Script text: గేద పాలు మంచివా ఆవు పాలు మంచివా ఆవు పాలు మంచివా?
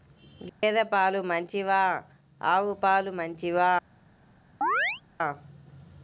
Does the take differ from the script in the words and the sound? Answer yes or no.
yes